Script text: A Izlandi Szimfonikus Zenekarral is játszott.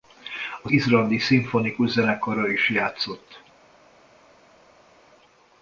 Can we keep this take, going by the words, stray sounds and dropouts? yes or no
yes